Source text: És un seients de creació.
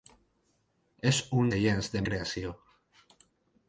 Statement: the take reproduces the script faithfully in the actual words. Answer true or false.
true